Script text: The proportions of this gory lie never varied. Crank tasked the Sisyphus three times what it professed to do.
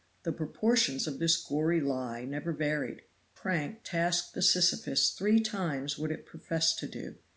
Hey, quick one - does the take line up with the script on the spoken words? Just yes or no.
yes